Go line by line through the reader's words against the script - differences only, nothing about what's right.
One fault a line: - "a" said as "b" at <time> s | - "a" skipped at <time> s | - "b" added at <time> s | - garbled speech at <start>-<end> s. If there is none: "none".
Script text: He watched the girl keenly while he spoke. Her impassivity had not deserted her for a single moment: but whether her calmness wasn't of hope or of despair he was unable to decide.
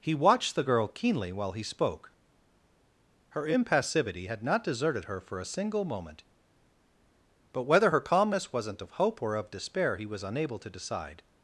none